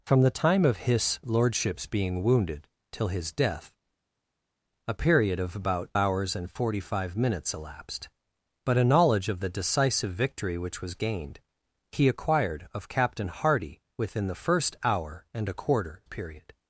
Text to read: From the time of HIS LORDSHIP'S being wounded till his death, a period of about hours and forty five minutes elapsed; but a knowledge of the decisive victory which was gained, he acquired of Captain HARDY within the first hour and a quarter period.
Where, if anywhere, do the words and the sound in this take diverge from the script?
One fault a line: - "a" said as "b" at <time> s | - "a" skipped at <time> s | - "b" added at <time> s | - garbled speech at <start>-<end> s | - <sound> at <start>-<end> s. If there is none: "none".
none